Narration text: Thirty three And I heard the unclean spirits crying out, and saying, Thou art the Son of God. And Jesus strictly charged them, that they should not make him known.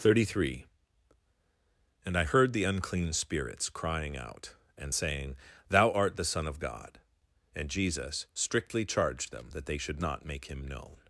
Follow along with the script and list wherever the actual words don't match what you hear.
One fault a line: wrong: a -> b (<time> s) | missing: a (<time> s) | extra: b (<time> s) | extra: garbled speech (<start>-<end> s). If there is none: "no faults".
no faults